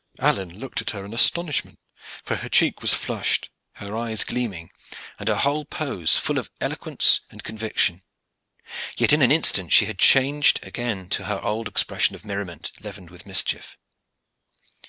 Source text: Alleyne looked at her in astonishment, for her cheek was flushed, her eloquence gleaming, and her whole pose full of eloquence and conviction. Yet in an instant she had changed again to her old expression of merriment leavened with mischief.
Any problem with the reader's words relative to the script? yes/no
yes